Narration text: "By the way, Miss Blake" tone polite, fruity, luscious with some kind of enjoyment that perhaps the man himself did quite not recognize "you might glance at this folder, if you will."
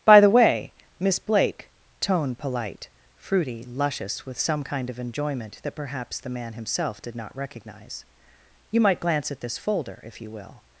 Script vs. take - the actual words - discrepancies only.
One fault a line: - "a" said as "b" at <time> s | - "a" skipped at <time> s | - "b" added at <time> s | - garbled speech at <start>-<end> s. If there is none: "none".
- "quite" skipped at 7.2 s